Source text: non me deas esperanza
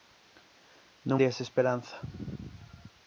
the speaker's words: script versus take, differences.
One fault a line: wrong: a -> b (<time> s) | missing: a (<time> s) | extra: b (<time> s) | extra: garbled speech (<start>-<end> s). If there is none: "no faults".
missing: me (1.2 s)